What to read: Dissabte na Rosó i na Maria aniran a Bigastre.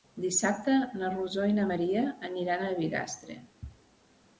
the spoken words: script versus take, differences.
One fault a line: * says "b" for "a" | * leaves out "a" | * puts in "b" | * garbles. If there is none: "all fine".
all fine